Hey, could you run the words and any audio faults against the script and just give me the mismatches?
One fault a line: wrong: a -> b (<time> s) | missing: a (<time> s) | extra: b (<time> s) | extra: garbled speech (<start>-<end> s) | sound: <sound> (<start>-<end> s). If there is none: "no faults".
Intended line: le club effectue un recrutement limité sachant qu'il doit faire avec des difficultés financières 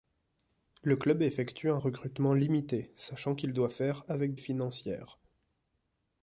missing: des difficultés (4.4 s)